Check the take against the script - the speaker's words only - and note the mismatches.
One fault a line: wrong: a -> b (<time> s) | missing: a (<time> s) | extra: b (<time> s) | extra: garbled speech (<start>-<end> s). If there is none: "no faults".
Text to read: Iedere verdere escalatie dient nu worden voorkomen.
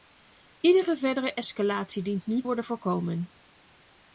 no faults